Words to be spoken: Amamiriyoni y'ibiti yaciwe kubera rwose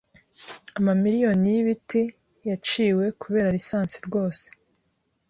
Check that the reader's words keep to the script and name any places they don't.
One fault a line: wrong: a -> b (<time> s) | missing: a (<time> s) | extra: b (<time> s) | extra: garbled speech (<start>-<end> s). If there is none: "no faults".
extra: lisansi (3.6 s)